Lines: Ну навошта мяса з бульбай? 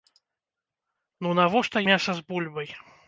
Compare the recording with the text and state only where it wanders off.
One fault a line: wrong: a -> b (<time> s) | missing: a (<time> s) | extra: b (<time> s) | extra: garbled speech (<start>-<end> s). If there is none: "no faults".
no faults